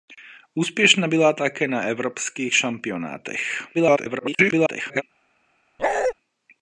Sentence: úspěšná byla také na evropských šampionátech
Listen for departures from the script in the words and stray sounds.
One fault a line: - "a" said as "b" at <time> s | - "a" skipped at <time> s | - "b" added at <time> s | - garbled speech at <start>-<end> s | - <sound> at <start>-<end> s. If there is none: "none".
- garbled speech at 3.7-5.0 s
- bark at 5.8-6.1 s